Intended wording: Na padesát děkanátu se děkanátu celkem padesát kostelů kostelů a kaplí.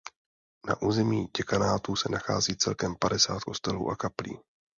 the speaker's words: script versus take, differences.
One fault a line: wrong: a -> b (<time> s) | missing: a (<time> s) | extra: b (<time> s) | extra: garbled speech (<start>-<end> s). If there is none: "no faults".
wrong: padesát -> území (0.8 s)
wrong: děkanátu -> nachází (2.1 s)
missing: kostelů (3.9 s)